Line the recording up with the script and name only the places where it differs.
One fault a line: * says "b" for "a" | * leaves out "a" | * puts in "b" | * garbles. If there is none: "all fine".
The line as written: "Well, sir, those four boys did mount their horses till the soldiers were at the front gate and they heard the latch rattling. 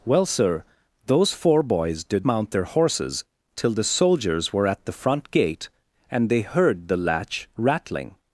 all fine